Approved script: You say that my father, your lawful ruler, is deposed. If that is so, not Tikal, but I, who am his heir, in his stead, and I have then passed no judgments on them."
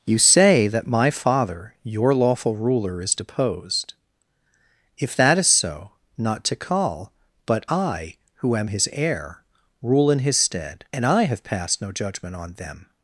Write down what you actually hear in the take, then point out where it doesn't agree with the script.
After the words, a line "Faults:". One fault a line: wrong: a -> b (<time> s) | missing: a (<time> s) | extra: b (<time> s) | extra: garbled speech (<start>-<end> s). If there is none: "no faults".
You say that my father, your lawful ruler, is deposed. If that is so, not Tikal, but I, who am his heir, rule in his stead, and I have passed no judgment on them."
Faults:
extra: rule (9.8 s)
missing: then (11.4 s)
wrong: judgments -> judgment (11.9 s)